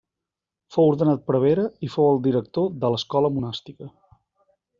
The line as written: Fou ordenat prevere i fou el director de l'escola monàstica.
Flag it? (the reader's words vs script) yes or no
no